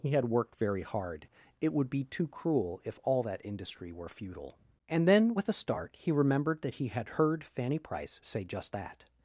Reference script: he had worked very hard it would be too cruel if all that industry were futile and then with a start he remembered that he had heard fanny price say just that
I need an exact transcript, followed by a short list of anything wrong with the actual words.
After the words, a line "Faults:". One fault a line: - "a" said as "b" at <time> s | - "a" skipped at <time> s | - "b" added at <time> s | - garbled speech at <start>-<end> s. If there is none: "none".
he had worked very hard it would be too cruel if all that industry were futile and then with a start he remembered that he had heard fanny price say just that
Faults:
none